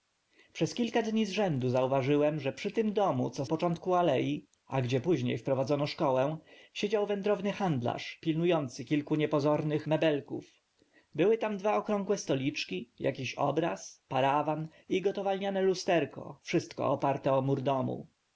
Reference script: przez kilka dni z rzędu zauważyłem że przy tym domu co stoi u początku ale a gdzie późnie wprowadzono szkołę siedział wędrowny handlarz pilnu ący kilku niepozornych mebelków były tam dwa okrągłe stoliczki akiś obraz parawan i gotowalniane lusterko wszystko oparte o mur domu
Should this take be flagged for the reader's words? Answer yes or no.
yes